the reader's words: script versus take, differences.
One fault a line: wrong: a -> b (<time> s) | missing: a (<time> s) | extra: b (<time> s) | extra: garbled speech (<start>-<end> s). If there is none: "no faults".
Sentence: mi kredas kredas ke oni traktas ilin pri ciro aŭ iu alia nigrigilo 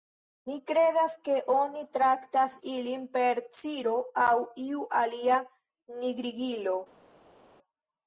missing: kredas (1.2 s)
wrong: pri -> per (3.2 s)